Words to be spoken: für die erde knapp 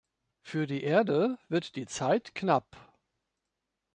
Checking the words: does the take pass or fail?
fail